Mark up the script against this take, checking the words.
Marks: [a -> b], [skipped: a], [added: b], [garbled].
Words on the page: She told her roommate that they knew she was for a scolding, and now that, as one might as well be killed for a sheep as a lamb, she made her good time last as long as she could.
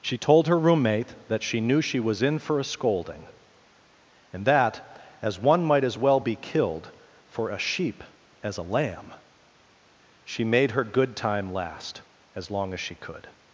She told her roommate that [they -> she] knew she was [added: in] for a scolding, and [skipped: now] that, as one might as well be killed for a sheep as a lamb, she made her good time last as long as she could.